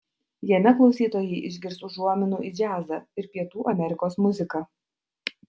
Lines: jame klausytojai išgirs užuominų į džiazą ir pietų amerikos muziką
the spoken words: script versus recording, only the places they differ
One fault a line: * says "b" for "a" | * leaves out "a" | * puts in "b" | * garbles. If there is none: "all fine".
all fine